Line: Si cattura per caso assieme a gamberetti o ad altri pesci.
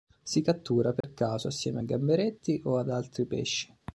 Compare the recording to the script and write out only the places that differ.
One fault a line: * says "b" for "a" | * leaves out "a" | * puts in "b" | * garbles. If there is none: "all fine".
all fine